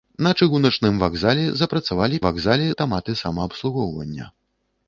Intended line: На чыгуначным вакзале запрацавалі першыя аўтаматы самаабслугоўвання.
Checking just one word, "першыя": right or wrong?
wrong